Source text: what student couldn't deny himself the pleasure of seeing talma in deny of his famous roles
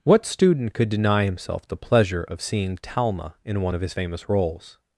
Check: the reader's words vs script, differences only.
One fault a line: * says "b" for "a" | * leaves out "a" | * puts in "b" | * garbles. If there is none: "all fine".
* says "could" for "couldn't"
* says "one" for "deny"